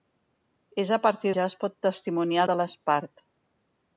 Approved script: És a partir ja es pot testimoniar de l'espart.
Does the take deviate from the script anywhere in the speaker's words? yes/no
no